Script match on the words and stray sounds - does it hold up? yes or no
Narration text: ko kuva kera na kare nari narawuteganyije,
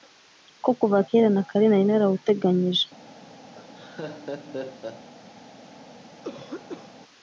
no